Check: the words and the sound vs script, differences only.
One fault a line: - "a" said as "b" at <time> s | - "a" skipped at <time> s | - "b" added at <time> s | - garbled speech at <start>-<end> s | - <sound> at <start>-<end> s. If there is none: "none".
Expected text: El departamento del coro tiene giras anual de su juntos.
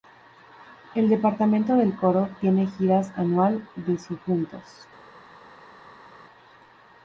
none